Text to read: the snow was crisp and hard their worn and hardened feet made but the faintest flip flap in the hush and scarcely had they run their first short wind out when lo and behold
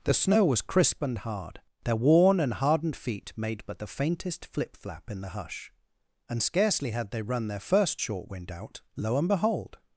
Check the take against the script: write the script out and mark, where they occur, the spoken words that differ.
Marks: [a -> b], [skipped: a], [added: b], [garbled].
the snow was crisp and hard their worn and hardened feet made but the faintest flip flap in the hush and scarcely had they run their first short wind out [skipped: when] lo and behold